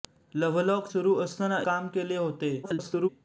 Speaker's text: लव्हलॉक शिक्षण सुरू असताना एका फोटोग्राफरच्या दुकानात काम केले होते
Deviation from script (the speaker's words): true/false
true